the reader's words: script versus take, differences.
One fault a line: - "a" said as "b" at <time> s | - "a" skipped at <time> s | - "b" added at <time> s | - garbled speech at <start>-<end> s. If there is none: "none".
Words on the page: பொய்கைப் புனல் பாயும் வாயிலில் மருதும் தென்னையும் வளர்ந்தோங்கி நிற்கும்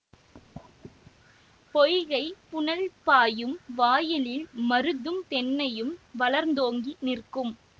none